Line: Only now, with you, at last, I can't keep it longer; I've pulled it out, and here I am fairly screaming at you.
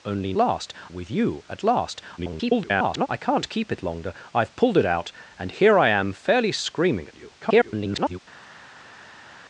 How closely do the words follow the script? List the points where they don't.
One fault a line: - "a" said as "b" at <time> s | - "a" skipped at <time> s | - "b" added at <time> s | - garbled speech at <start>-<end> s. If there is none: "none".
- "now" said as "last" at 0.3 s
- garbled speech at 2.2-3.1 s
- garbled speech at 7.4-8.2 s